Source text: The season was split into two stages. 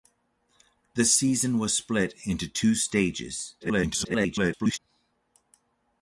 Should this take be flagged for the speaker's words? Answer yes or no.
yes